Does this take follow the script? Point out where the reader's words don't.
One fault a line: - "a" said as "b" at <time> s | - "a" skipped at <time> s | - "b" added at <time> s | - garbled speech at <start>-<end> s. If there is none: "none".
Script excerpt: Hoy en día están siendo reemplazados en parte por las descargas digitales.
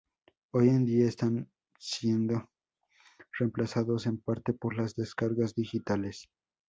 none